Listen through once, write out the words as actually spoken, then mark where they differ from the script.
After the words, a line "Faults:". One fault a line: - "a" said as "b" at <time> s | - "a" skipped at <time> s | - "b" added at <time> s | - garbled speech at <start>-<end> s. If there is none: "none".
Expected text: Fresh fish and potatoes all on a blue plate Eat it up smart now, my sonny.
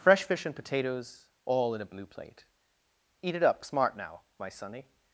Fresh fish and potatoes all in a blue plate Eat it up smart now, my sonny.
Faults:
- "on" said as "in" at 1.8 s